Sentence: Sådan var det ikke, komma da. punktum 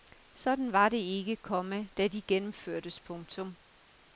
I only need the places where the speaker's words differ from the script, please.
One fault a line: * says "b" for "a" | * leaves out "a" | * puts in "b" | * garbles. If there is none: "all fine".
* puts in "de gennemførtes"